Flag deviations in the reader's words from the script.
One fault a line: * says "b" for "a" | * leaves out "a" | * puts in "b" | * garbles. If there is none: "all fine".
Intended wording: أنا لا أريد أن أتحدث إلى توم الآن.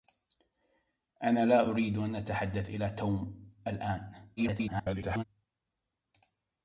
* garbles